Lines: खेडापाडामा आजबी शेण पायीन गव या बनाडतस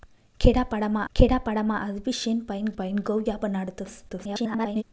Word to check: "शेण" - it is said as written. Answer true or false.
true